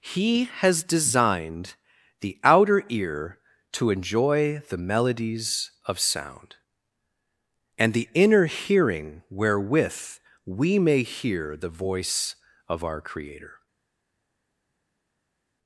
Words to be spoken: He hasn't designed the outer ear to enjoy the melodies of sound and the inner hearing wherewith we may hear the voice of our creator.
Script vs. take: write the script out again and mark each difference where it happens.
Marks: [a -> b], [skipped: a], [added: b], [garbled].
He [hasn't -> has] designed the outer ear to enjoy the melodies of sound and the inner hearing wherewith we may hear the voice of our creator.